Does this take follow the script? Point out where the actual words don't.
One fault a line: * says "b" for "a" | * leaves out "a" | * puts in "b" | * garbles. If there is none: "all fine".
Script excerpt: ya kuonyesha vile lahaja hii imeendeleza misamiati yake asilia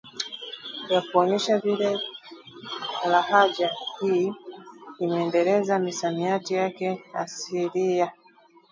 all fine